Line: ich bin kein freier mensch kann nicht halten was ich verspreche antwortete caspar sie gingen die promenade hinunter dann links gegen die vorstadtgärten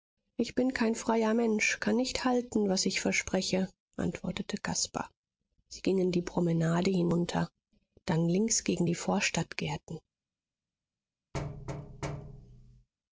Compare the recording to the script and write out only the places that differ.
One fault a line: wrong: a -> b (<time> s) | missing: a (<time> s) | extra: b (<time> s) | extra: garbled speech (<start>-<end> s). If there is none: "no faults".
no faults